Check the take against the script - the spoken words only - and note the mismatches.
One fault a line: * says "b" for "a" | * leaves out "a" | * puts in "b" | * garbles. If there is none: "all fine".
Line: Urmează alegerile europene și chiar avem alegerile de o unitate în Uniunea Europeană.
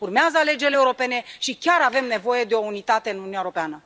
* says "nevoie" for "alegerile"